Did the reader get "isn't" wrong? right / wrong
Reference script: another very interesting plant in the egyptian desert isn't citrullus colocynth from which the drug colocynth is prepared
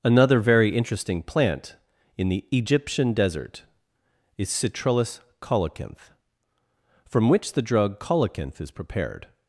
wrong